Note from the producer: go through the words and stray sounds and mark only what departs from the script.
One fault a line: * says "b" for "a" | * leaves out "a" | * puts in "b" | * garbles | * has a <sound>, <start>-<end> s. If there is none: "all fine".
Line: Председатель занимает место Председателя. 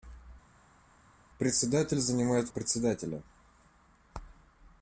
* leaves out "место"